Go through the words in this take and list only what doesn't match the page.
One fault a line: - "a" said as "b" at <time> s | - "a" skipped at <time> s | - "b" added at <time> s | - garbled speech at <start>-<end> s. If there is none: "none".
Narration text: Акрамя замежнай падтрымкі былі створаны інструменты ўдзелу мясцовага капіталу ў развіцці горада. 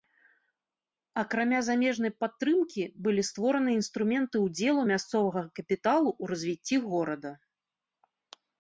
none